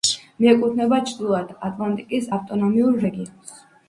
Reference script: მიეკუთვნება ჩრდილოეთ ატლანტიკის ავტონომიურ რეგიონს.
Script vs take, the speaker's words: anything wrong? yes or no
no